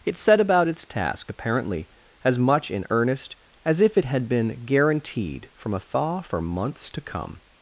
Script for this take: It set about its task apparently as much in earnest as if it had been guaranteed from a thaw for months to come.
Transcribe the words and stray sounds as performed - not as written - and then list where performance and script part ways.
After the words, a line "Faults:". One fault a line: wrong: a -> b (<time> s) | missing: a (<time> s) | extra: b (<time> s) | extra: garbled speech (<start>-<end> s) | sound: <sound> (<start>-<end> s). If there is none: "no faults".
It set about its task apparently as much in earnest as if it had been guaranteed from a thaw for months to come.
Faults:
no faults